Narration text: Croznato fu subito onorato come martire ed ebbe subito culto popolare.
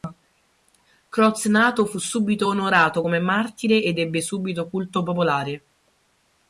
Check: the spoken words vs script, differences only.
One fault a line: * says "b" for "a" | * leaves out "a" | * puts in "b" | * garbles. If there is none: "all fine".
all fine